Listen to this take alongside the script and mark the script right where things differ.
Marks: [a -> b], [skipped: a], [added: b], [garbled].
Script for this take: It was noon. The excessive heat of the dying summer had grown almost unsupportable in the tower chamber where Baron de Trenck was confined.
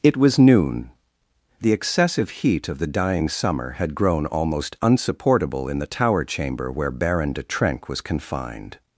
It was noon. The excessive heat of the dying summer had grown almost unsupportable in the tower chamber where Baron de Trenck was confined.